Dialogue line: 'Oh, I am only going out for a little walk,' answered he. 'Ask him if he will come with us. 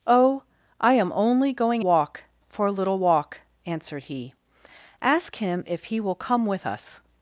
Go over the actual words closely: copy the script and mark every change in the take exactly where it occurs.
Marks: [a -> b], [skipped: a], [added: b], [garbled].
'Oh, I am only going [out -> walk] for a little walk,' answered he. 'Ask him if he will come with us.